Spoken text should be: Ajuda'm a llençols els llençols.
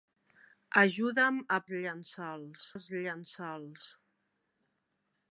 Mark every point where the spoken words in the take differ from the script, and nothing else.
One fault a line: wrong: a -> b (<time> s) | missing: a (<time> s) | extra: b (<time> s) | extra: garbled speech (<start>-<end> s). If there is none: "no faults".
no faults